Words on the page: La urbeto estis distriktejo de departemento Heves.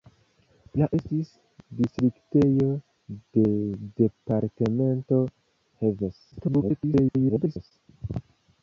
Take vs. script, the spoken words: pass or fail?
fail